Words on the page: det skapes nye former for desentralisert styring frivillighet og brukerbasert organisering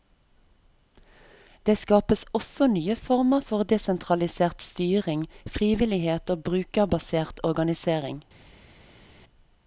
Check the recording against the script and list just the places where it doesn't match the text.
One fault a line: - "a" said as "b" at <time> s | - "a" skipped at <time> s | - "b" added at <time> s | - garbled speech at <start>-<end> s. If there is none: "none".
- "også" added at 2.4 s